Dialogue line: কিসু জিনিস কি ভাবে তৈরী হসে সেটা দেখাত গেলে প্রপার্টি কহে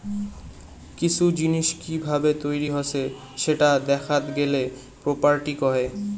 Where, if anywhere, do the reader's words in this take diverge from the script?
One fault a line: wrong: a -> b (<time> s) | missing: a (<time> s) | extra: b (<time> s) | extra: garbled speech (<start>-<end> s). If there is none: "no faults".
no faults